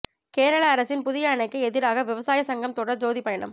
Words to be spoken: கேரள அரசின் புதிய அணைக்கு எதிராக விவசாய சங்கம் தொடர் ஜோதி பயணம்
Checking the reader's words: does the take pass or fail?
pass